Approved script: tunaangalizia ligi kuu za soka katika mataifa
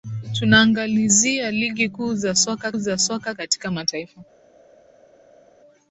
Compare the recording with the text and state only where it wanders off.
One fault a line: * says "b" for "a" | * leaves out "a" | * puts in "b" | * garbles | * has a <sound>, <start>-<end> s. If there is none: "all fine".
* puts in "za soka"